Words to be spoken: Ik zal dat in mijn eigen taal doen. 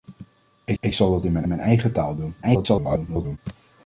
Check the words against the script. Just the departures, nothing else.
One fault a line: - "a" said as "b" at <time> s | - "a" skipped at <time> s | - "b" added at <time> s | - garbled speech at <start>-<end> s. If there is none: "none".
- "ik" added at 0.8 s
- "mijn" added at 1.5 s
- garbled speech at 2.4-3.4 s